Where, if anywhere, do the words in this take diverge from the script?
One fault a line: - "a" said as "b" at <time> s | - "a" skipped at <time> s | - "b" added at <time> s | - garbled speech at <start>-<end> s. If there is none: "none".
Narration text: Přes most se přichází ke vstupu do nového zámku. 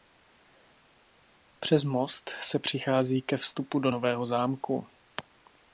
none